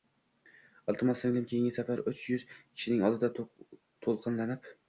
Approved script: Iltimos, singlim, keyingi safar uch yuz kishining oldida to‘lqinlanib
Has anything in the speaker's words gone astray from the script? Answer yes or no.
no